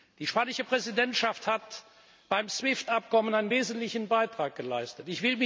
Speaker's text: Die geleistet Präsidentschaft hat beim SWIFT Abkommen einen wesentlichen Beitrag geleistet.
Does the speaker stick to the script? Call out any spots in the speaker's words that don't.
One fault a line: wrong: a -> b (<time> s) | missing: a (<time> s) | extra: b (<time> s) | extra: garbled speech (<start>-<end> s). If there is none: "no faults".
wrong: geleistet -> spanische (0.3 s)